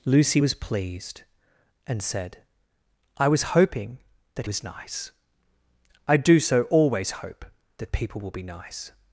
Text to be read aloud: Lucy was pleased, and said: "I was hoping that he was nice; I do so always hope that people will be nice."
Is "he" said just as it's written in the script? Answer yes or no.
no